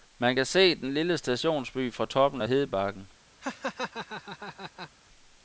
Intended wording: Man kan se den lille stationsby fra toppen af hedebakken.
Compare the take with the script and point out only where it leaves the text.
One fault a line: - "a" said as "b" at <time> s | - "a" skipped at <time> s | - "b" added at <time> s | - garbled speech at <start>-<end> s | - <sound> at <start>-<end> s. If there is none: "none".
- laugh at 3.4-4.9 s